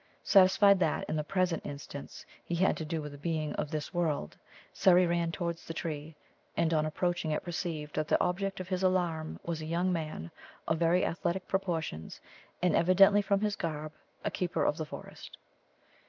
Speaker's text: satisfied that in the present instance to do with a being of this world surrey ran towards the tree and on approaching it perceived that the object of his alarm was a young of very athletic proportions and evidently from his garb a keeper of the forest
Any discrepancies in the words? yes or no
yes